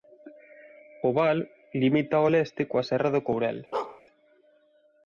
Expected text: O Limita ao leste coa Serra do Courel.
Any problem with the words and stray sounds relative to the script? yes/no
yes